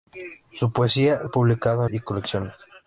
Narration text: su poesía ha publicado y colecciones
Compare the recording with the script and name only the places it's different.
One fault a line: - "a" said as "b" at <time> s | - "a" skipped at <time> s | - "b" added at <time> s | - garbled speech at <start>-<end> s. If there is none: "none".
none